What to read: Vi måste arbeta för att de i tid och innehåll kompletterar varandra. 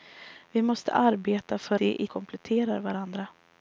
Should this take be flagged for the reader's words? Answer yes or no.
yes